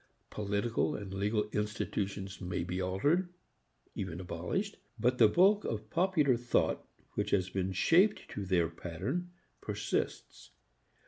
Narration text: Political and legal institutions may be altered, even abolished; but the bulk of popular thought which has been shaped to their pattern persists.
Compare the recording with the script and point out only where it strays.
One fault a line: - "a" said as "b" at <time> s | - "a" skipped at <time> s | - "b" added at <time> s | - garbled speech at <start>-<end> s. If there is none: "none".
none